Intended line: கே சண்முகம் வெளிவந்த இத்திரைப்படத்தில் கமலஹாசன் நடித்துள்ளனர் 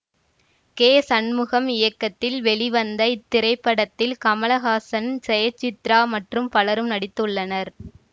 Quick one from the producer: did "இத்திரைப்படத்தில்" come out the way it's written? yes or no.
yes